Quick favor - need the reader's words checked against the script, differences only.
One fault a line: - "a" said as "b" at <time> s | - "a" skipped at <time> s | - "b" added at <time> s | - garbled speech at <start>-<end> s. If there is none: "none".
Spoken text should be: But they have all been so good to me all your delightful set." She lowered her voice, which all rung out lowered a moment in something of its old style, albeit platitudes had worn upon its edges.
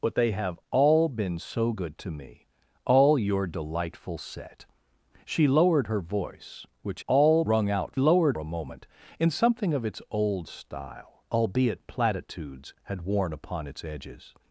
none